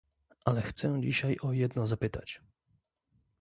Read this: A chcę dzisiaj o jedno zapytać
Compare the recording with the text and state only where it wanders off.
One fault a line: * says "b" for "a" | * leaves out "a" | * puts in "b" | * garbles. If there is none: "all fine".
* says "Ale" for "A"